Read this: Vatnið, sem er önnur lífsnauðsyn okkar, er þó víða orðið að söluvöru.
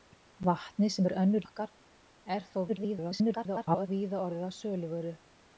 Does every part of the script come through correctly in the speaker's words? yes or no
no